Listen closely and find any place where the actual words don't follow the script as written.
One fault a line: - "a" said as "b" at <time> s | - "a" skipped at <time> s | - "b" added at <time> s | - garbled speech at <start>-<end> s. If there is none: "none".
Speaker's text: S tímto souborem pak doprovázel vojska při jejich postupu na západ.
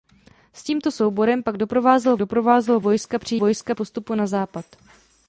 - "doprovázel" added at 2.2 s
- "jejich" said as "vojska" at 3.4 s